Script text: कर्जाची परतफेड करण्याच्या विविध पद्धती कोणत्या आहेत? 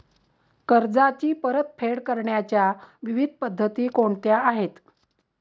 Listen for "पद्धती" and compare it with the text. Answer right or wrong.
right